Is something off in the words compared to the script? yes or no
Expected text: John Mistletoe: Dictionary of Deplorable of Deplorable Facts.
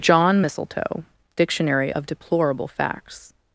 yes